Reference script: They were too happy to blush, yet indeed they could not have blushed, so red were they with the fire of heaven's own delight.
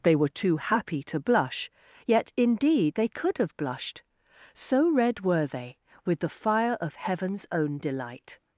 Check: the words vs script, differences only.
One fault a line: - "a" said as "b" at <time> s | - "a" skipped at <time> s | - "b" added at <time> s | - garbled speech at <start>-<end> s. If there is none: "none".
- "not" skipped at 3.4 s